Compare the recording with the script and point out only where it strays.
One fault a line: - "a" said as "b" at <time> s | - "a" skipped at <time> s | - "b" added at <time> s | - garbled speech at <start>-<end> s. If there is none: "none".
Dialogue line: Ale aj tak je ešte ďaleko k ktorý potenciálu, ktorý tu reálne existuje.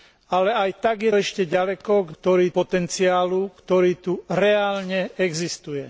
none